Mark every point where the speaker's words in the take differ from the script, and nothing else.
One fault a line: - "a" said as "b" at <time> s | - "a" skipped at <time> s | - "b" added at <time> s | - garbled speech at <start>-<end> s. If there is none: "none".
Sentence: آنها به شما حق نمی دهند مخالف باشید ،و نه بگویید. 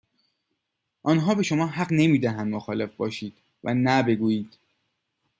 none